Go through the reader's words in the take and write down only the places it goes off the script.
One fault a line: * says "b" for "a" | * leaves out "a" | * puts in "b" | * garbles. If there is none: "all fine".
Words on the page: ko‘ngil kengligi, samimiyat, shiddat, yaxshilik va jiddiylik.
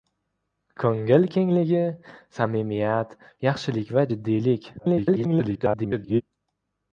* leaves out "shiddat"
* garbles